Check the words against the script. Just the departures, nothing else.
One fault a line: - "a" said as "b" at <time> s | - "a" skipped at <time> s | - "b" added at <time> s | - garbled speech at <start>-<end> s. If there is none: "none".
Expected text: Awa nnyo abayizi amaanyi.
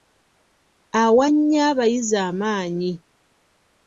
none